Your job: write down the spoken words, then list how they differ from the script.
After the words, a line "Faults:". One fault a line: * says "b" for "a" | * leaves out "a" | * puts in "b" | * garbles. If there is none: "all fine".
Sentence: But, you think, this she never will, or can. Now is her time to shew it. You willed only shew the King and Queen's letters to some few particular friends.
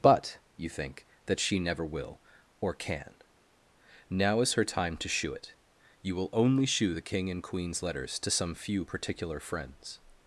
But, you think, that she never will, or can. Now is her time to shew it. You will only shew the King and Queen's letters to some few particular friends.
Faults:
* says "that" for "this"
* says "will" for "willed"